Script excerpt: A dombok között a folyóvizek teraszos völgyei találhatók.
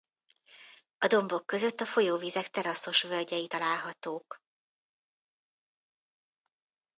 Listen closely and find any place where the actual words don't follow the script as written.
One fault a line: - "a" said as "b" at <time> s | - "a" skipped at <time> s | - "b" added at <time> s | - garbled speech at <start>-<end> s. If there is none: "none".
none